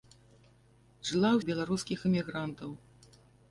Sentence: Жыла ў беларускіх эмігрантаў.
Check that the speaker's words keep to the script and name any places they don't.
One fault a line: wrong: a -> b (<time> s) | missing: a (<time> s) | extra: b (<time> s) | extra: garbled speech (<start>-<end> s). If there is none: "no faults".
no faults